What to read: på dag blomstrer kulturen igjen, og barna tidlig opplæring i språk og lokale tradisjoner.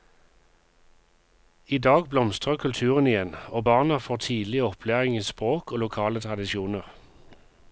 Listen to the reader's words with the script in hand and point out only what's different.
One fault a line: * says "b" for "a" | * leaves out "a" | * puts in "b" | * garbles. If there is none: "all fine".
* says "I" for "på"
* puts in "får"